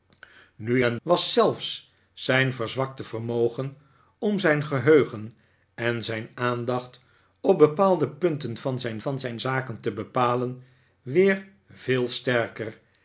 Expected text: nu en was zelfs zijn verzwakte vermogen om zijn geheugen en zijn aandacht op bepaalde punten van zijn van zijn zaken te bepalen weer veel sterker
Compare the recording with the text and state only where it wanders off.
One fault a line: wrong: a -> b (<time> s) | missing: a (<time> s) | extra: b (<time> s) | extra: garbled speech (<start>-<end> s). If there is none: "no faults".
no faults